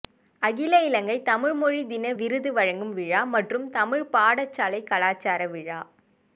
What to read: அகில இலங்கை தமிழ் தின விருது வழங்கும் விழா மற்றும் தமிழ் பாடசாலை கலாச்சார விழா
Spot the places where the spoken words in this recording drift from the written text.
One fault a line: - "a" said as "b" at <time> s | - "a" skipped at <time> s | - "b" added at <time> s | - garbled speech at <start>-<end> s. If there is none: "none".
- "மொழி" added at 1.5 s